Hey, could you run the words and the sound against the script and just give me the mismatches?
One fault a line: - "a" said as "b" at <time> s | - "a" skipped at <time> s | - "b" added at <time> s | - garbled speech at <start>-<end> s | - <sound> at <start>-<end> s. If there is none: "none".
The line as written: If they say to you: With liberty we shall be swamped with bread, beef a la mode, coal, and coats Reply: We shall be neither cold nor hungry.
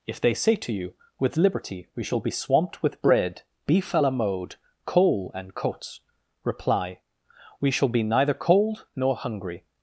none